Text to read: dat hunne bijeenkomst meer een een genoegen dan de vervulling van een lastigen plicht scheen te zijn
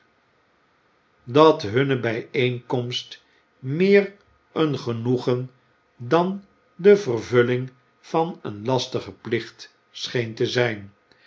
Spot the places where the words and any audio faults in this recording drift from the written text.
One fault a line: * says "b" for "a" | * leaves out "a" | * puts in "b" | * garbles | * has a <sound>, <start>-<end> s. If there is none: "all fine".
* leaves out "een"